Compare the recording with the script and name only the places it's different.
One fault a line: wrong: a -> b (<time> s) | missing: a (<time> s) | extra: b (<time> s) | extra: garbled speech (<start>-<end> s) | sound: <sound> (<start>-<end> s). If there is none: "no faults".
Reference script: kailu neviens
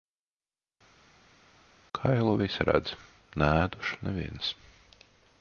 extra: visi redz neēdušu (2.4 s)